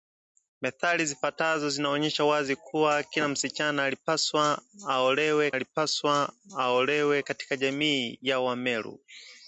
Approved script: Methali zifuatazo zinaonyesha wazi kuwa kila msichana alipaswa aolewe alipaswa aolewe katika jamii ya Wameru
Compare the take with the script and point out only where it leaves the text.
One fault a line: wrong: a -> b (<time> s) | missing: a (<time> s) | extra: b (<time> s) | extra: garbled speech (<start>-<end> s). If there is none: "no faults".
no faults